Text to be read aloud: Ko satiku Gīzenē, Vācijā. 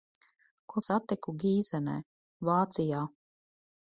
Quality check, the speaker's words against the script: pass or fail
pass